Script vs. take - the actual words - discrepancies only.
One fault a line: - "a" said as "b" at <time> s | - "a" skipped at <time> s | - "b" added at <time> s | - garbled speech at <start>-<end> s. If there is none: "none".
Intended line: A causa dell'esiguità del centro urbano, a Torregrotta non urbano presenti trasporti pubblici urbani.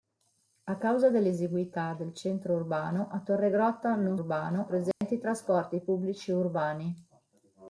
none